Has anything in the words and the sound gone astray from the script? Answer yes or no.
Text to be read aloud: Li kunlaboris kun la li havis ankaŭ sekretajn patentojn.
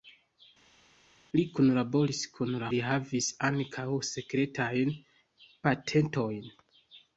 no